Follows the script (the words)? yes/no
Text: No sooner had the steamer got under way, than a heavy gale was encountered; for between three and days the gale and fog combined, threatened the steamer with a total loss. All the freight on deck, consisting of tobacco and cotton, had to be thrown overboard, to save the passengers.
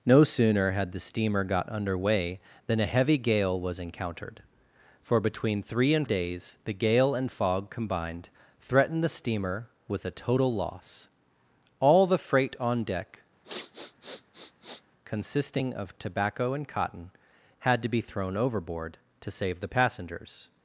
yes